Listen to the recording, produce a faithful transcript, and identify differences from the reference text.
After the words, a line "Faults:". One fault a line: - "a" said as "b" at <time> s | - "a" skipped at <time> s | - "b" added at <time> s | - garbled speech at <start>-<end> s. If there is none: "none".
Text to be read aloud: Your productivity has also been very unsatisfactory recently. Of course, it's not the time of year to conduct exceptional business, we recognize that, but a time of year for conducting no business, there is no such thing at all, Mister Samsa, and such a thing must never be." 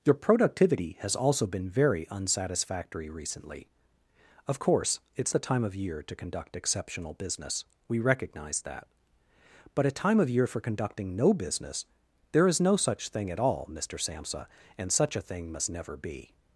Your productivity has also been very unsatisfactory recently. Of course, it's the time of year to conduct exceptional business, we recognize that, but a time of year for conducting no business, there is no such thing at all, Mister Samsa, and such a thing must never be."
Faults:
- "not" skipped at 5.3 s